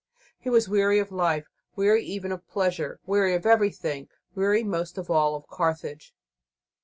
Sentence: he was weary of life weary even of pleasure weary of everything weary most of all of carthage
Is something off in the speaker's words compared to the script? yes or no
no